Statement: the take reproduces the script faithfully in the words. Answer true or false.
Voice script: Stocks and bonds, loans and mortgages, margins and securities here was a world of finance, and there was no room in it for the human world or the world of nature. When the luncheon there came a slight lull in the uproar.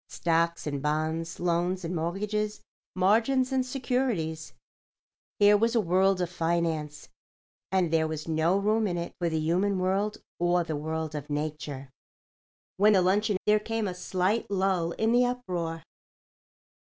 true